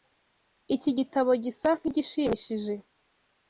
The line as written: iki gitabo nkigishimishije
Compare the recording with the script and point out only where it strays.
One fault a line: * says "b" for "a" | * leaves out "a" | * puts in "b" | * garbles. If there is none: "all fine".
* puts in "gisa"